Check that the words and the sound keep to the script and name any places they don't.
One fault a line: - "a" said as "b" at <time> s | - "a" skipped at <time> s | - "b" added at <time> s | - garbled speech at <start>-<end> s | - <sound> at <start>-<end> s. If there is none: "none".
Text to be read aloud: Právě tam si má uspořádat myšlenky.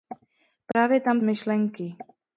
- dropout at 0.7-0.7 s
- "si má uspořádat" skipped at 1.2 s